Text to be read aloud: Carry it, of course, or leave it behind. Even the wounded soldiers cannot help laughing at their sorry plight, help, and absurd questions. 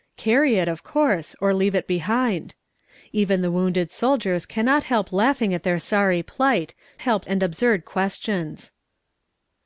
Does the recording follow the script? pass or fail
pass